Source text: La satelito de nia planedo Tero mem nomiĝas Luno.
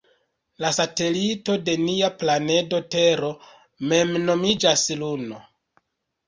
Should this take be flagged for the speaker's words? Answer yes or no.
no